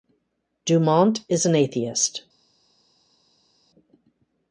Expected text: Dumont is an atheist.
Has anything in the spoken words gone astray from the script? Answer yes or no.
no